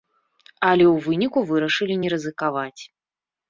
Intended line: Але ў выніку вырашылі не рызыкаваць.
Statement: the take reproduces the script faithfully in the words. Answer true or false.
true